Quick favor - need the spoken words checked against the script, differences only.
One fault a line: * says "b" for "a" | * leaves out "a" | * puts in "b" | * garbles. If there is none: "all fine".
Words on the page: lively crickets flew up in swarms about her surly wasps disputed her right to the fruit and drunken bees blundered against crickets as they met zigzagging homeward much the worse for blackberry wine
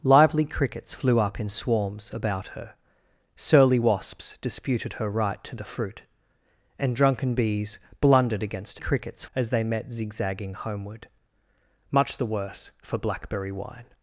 all fine